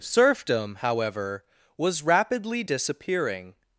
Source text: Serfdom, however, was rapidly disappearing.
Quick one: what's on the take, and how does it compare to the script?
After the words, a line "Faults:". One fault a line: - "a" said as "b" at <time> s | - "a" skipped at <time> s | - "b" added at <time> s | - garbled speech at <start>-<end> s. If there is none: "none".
Serfdom, however, was rapidly disappearing.
Faults:
none